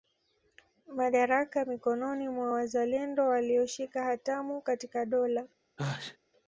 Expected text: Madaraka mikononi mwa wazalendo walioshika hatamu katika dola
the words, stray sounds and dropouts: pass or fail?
fail